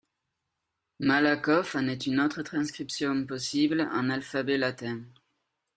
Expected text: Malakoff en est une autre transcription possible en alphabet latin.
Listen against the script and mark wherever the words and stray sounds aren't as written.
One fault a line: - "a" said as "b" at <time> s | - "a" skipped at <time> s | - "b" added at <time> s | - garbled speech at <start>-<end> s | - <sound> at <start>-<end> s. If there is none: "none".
none